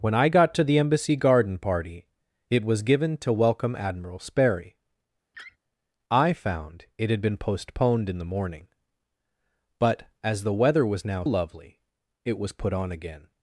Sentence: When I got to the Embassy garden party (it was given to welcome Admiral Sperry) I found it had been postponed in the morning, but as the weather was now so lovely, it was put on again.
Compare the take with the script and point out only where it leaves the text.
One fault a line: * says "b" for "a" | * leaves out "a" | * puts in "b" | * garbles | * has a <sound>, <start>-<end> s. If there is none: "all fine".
* has a laugh, 5.3-5.6 s
* leaves out "so"